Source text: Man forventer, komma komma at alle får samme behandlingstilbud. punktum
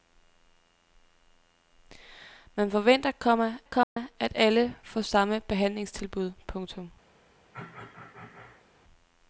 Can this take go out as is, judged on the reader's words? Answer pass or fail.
pass